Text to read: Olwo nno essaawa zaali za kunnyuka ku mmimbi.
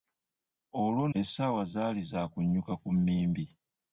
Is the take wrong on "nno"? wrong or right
wrong